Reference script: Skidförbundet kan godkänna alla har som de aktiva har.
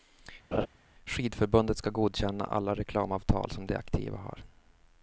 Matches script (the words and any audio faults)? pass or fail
fail